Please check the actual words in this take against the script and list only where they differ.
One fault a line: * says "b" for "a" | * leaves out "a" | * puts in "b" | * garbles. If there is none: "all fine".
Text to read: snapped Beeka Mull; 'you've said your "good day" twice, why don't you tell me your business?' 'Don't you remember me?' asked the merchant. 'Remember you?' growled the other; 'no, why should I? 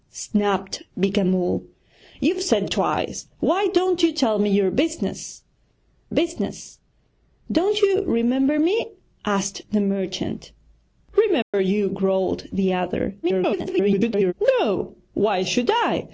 * leaves out "your good day"
* puts in "business"
* garbles